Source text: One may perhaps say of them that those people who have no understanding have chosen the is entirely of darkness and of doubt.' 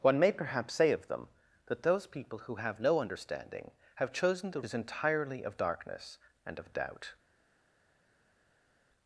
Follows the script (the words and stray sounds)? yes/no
yes